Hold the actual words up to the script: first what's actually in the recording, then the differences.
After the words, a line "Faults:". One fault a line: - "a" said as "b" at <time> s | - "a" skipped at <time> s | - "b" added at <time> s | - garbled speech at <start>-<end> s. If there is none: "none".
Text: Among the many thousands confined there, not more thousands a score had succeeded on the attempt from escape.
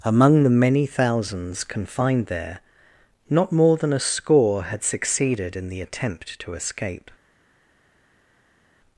Among the many thousands confined there, not more than a score had succeeded in the attempt to escape.
Faults:
- "thousands" said as "than" at 3.8 s
- "on" said as "in" at 5.5 s
- "from" said as "to" at 6.4 s